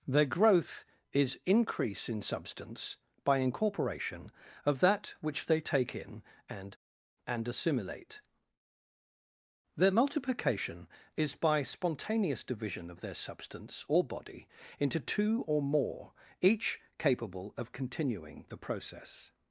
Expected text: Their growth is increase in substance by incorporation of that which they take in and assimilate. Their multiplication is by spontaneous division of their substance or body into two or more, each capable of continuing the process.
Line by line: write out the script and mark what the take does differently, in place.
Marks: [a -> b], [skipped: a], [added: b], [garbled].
Their growth is increase in substance by incorporation of that which they take in and [added: and] assimilate. Their multiplication is by spontaneous division of their substance or body into two or more, each capable of continuing the process.